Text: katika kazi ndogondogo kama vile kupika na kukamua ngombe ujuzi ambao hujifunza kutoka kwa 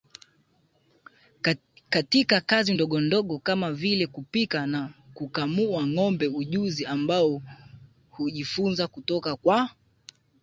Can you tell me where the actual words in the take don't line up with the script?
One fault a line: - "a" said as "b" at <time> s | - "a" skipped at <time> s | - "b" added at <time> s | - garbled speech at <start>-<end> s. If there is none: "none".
none